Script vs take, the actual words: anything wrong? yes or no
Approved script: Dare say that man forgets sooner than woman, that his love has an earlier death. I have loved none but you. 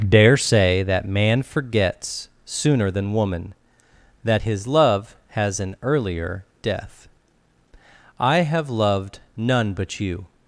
no